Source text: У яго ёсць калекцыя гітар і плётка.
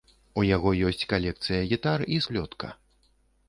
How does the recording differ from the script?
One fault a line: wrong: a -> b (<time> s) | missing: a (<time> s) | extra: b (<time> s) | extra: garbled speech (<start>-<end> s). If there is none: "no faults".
no faults